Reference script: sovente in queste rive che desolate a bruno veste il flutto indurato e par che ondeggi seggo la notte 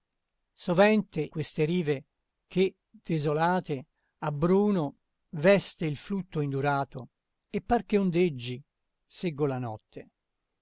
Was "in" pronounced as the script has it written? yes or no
no